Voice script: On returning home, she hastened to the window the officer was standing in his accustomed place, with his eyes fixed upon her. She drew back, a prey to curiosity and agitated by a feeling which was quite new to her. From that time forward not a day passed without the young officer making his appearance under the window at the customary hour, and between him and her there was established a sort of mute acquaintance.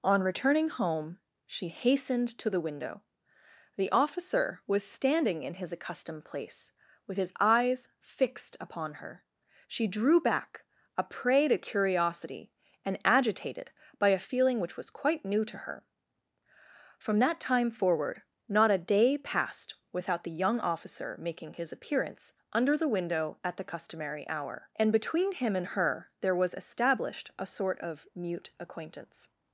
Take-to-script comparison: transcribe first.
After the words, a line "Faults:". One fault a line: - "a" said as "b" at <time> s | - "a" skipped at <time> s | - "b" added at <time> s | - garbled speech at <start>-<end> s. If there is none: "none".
On returning home, she hastened to the window the officer was standing in his accustomed place, with his eyes fixed upon her. She drew back, a prey to curiosity and agitated by a feeling which was quite new to her. From that time forward not a day passed without the young officer making his appearance under the window at the customary hour, and between him and her there was established a sort of mute acquaintance.
Faults:
none